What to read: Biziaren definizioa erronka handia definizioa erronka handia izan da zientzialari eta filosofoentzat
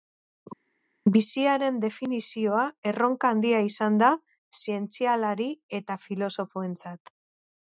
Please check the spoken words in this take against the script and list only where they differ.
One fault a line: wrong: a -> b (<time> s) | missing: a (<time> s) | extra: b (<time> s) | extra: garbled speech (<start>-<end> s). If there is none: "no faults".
missing: definizioa erronka handia (3.6 s)